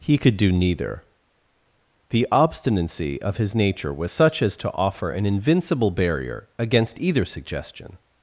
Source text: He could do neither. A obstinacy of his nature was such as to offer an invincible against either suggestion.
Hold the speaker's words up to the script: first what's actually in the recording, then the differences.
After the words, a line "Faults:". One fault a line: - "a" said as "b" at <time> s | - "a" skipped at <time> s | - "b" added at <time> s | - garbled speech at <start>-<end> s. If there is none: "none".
He could do neither. The obstinacy of his nature was such as to offer an invincible barrier against either suggestion.
Faults:
- "A" said as "The" at 2.1 s
- "barrier" added at 5.9 s